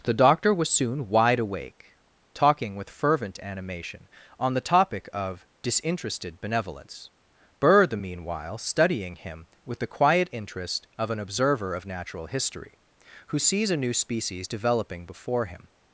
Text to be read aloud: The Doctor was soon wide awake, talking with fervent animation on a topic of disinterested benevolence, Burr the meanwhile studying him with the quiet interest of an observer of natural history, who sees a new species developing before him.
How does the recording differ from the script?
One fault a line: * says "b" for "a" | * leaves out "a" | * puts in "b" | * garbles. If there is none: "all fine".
* says "the" for "a"